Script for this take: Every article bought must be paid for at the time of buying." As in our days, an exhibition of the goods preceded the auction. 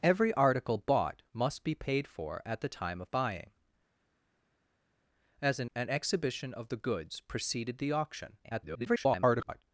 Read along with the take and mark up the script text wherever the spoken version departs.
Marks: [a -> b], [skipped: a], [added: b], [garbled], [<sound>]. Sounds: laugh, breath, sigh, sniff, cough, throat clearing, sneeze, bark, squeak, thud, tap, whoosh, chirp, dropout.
Every article bought must be paid for at the time of buying." As in [skipped: our days,] an exhibition of the goods preceded the auction. [garbled]